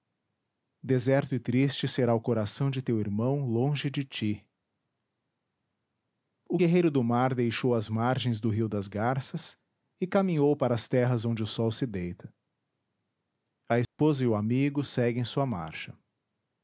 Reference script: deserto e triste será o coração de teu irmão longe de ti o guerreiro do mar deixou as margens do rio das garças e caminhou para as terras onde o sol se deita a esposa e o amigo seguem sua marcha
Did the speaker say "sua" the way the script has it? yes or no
yes